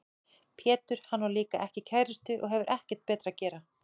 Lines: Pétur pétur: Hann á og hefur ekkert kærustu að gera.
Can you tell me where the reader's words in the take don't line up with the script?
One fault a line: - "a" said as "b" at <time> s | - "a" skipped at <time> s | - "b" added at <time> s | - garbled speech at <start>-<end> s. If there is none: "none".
- "pétur" skipped at 1.0 s
- "líka ekki kærustu" added at 1.4 s
- "kærustu" said as "betra" at 3.1 s